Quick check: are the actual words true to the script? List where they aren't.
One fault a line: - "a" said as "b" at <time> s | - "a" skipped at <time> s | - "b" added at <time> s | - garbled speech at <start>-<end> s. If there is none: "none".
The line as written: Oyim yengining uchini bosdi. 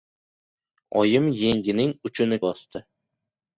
none